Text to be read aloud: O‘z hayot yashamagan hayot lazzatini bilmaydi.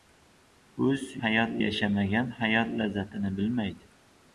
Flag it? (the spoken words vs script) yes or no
no